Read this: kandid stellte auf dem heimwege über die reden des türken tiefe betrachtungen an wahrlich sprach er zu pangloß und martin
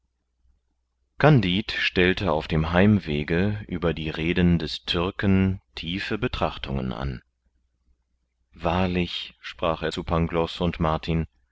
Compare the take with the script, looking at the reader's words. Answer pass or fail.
pass